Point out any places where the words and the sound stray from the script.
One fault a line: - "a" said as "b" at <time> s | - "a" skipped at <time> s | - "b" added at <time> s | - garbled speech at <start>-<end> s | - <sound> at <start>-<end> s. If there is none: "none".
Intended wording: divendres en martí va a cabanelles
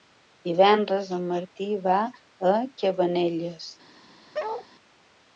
- bark at 4.3-4.7 s